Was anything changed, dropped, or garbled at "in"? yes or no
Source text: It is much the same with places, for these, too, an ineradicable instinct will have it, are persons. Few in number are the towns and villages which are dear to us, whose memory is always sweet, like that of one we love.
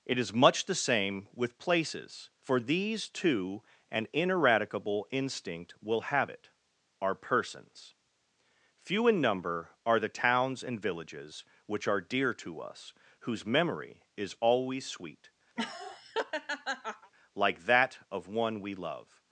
no